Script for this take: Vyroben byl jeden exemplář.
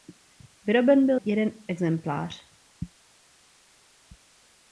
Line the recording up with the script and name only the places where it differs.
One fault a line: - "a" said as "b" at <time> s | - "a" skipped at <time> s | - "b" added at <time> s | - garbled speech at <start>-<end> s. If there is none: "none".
none